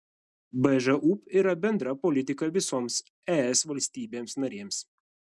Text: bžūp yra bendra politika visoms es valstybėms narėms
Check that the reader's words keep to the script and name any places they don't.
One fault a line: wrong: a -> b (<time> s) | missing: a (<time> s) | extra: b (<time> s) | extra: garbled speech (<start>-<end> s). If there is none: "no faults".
no faults